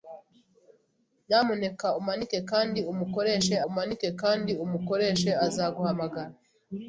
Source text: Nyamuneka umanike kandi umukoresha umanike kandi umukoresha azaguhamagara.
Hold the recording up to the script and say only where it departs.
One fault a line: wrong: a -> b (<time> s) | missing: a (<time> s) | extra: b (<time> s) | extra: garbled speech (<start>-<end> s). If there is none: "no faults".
no faults